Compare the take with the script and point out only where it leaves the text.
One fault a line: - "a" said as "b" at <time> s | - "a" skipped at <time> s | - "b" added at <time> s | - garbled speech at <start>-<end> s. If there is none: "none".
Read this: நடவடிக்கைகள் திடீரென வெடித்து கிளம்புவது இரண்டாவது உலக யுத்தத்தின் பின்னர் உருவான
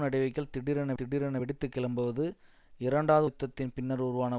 - "திடீரென" added at 1.0 s
- "உலக" skipped at 3.3 s